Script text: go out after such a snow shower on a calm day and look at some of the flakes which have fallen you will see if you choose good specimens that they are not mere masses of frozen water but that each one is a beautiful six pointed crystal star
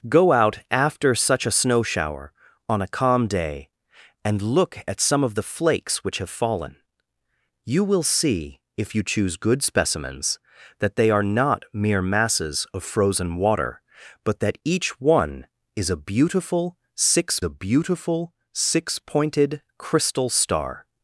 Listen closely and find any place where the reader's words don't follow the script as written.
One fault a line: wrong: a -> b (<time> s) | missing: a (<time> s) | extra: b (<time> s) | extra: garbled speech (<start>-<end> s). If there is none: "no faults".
extra: a beautiful six (17.4 s)